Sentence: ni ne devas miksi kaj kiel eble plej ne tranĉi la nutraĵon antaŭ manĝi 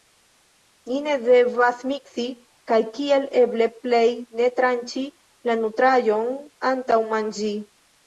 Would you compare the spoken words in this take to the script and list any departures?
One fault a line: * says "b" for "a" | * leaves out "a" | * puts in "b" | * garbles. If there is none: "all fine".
all fine